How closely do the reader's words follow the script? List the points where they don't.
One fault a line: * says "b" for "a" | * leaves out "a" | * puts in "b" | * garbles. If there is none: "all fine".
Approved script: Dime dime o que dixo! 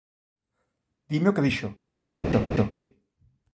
* leaves out "dime"